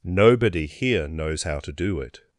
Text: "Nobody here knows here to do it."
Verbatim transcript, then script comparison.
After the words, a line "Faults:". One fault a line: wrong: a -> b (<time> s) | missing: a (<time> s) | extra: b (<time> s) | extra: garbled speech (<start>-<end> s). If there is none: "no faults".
"Nobody here knows how to do it."
Faults:
wrong: here -> how (1.4 s)